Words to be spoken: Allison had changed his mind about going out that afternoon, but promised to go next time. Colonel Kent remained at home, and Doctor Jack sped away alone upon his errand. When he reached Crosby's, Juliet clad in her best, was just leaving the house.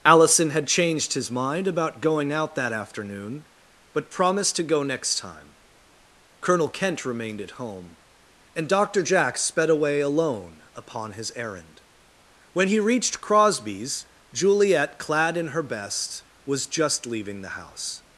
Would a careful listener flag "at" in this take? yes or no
no